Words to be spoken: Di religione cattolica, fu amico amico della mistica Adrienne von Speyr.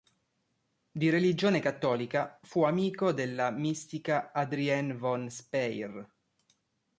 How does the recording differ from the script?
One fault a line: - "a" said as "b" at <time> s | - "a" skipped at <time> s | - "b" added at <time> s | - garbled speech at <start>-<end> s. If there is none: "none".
- "amico" skipped at 3.1 s